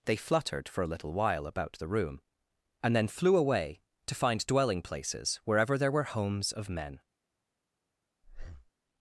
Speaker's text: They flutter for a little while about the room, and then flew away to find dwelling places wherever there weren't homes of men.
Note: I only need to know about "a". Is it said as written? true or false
true